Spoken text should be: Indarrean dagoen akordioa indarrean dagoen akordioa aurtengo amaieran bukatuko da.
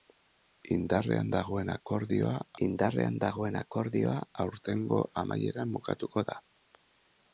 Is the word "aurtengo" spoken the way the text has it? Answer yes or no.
yes